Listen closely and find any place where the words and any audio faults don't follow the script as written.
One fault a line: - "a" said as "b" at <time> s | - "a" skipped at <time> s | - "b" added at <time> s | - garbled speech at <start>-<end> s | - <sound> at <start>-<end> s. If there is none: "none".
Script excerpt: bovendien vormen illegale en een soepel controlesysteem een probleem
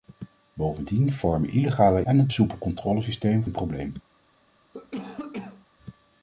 - cough at 4.7-5.7 s